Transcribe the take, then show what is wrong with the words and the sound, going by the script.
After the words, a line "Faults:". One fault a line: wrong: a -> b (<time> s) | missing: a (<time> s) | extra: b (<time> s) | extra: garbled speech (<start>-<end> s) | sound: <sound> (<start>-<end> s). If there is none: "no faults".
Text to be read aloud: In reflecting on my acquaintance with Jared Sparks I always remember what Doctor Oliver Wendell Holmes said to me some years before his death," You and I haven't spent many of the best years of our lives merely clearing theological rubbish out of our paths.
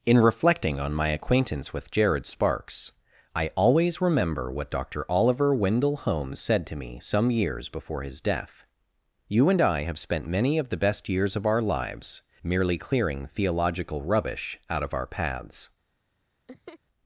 In reflecting on my acquaintance with Jared Sparks I always remember what Doctor Oliver Wendell Holmes said to me some years before his death," You and I have spent many of the best years of our lives merely clearing theological rubbish out of our paths.
Faults:
wrong: haven't -> have (9.8 s)
sound: laugh (16.5-16.8 s)